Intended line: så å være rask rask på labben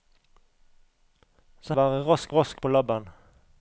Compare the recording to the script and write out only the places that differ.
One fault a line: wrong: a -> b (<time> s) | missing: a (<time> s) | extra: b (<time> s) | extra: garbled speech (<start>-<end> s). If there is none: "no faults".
no faults